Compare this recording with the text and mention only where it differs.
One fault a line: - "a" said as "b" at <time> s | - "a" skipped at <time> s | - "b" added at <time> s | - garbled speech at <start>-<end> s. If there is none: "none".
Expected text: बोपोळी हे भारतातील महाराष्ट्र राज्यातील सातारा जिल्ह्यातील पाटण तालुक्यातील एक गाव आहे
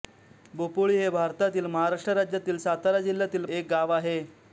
- "पाटण तालुक्यातील" skipped at 3.5 s